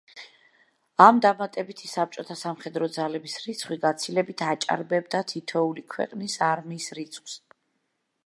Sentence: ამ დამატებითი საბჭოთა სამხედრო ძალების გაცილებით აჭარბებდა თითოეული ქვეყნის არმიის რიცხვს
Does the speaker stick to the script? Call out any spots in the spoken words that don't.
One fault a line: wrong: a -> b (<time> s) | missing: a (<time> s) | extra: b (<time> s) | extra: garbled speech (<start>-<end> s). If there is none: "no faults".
extra: რიცხვი (3.4 s)